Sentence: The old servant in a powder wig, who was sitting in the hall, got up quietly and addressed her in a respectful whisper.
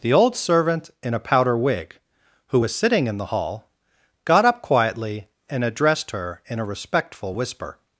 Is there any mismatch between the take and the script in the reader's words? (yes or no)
no